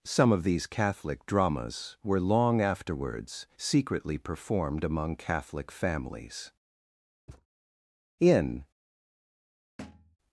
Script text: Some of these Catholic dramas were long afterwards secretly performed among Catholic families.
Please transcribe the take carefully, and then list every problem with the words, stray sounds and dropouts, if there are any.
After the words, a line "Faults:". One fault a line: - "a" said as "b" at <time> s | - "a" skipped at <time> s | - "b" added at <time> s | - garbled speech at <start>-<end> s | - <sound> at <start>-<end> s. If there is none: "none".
Some of these Catholic dramas were long afterwards secretly performed among Catholic families. In
Faults:
- thud at 7.3-7.5 s
- "In" added at 8.2 s
- thud at 9.8-10.2 s